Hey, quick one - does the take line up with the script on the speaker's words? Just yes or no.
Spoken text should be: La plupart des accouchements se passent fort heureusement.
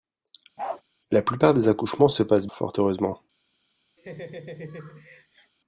yes